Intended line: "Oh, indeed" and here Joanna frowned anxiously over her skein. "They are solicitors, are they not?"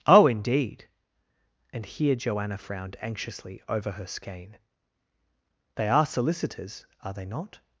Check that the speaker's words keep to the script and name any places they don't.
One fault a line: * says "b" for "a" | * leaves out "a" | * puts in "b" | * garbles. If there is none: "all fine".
all fine